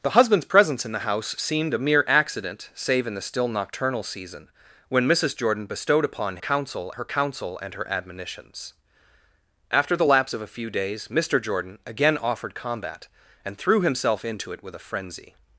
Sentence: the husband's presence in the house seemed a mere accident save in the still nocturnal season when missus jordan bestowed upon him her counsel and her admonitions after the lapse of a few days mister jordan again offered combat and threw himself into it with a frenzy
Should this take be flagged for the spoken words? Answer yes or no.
yes